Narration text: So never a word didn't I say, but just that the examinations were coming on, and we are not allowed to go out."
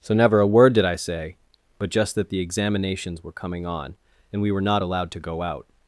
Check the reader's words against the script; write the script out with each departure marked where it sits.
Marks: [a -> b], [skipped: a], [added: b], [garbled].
So never a word [didn't -> did] I say, but just that the examinations were coming on, and we [are -> were] not allowed to go out."